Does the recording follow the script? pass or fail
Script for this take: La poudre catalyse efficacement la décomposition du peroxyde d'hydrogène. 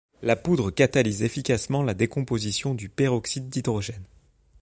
pass